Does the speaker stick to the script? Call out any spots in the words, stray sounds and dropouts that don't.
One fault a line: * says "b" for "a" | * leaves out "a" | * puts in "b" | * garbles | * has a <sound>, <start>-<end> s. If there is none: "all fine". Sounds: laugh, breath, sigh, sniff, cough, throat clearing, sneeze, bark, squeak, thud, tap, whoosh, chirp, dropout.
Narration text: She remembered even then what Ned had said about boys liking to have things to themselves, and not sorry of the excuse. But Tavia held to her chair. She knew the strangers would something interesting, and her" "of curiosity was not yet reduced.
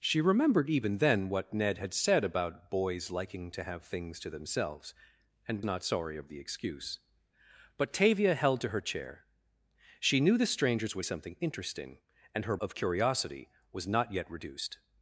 all fine